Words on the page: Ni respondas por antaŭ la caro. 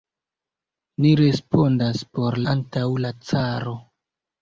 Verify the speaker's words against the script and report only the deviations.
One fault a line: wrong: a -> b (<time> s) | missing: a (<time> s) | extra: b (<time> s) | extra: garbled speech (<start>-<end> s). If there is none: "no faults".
no faults